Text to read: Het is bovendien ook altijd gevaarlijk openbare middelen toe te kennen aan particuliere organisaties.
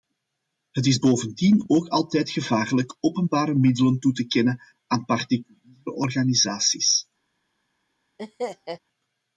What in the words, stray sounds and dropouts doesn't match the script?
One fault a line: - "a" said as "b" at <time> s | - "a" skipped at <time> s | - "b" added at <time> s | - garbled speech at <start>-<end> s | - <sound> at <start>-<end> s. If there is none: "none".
- laugh at 8.2-8.8 s